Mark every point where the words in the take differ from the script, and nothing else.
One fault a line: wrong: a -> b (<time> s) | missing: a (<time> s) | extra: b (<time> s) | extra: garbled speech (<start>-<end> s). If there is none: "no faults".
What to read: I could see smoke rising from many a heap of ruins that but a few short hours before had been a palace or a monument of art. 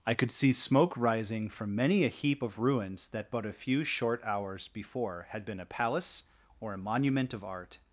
no faults